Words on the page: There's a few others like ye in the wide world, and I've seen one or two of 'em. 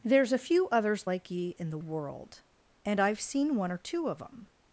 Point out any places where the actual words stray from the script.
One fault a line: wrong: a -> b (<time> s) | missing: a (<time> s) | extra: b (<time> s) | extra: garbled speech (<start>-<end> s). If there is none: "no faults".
missing: wide (1.8 s)